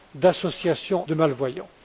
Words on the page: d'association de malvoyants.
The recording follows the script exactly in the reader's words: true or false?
true